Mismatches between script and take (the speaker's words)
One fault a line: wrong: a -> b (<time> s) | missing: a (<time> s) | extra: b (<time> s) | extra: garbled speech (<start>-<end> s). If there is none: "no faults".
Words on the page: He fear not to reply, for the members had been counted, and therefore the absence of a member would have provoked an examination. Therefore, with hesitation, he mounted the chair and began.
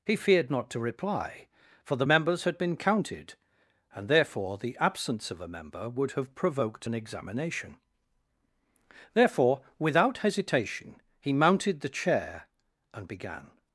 wrong: fear -> feared (0.1 s)
wrong: with -> without (9.8 s)